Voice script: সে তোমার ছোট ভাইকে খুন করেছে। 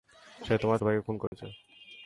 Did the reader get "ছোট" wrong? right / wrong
wrong